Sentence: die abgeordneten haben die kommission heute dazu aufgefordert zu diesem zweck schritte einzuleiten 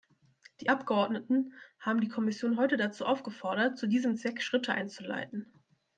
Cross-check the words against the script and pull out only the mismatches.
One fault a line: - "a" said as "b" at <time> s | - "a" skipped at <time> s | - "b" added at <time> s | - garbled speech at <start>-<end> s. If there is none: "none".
none